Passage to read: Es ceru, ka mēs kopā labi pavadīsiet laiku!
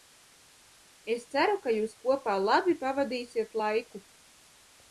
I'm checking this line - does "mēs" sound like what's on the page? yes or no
no